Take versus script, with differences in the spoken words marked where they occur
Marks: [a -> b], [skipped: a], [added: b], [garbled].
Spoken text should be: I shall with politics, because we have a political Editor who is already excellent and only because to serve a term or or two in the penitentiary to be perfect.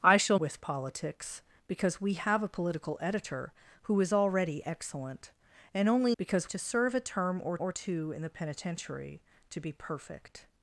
I shall with politics, because we have a political Editor who is already excellent and only because to serve a term or or two in the penitentiary to be perfect.